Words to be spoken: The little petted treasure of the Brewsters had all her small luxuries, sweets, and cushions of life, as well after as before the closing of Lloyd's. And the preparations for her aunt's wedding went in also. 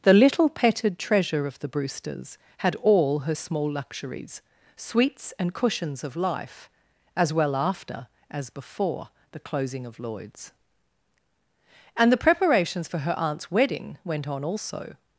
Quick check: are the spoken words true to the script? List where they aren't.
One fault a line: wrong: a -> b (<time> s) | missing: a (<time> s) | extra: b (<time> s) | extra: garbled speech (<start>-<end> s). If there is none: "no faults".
wrong: in -> on (14.3 s)